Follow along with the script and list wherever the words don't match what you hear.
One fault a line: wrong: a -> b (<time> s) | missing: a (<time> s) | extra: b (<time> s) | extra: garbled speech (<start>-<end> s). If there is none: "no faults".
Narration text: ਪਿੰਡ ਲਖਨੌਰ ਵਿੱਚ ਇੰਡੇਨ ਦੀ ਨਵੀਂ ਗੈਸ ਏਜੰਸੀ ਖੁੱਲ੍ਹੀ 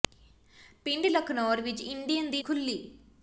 missing: ਨਵੀਂ ਗੈਸ ਏਜੰਸੀ (2.4 s)